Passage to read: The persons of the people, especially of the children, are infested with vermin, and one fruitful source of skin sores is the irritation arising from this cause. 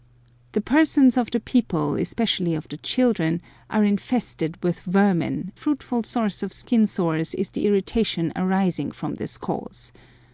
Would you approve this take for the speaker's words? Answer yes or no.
no